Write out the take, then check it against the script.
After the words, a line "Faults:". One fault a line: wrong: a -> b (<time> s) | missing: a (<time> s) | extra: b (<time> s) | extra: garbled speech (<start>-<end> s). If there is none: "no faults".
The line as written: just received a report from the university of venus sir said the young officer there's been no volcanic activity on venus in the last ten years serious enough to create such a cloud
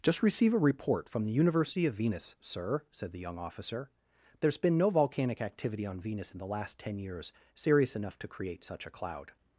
just receive a report from the university of venus sir said the young officer there's been no volcanic activity on venus in the last ten years serious enough to create such a cloud
Faults:
wrong: received -> receive (0.2 s)